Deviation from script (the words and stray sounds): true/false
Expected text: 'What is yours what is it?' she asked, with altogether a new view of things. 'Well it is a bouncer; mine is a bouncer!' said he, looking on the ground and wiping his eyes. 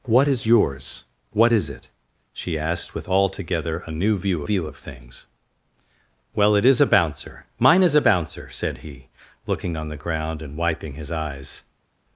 true